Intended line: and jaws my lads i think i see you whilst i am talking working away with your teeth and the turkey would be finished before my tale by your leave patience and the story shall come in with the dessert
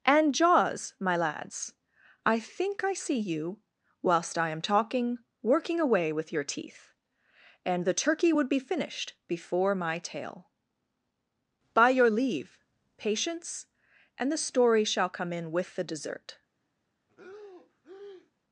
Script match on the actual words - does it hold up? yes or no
yes